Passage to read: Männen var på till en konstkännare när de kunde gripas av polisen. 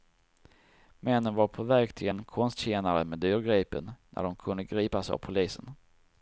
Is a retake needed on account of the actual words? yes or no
yes